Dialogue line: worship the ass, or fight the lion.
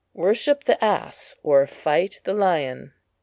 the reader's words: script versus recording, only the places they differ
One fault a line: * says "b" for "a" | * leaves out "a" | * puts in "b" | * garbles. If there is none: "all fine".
all fine